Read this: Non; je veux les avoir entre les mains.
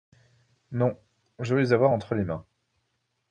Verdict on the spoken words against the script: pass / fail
pass